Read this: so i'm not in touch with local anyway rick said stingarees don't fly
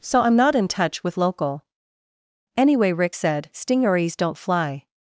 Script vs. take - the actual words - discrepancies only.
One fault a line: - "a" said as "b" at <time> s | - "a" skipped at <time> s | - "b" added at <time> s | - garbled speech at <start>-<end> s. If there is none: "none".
none